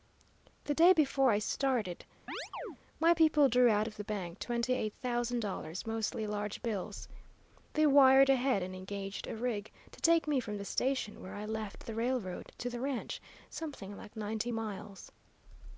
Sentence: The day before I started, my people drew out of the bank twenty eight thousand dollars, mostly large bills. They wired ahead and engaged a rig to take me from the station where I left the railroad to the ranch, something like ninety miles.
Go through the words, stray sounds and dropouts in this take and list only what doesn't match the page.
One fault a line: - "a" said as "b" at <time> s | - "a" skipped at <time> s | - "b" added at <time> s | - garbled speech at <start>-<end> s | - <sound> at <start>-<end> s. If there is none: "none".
- chirp at 2.3-2.8 s